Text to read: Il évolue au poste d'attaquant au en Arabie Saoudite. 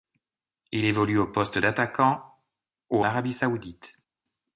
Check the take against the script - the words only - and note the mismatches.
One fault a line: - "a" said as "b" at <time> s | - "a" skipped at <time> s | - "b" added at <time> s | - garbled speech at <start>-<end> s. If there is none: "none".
- "en" skipped at 3.0 s